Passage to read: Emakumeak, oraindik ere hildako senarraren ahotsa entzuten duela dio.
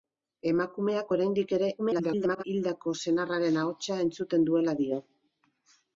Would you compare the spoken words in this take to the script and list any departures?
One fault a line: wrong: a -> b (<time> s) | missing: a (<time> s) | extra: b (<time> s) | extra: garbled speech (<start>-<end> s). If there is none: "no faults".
extra: garbled speech (1.8-2.4 s)